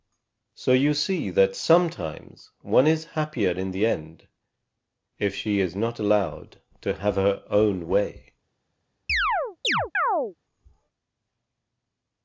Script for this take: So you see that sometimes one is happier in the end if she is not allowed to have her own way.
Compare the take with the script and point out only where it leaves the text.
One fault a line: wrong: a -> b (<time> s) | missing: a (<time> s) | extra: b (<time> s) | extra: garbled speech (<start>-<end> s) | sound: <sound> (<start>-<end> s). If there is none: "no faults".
sound: chirp (9.1-10.3 s)